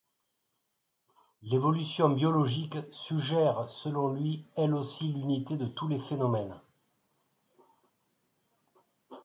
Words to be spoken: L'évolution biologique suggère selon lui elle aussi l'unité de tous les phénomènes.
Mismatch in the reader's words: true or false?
false